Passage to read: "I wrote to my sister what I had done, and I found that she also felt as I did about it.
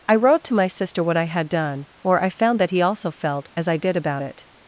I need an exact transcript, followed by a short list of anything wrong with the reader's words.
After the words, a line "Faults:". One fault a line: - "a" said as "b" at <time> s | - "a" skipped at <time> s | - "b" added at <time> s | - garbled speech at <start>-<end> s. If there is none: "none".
"I wrote to my sister what I had done, or I found that he also felt as I did about it.
Faults:
- "and" said as "or" at 2.0 s
- "she" said as "he" at 2.7 s